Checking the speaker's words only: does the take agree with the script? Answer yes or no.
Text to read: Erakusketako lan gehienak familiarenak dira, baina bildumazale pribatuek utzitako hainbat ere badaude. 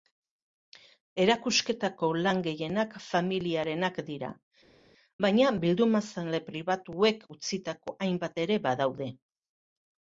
yes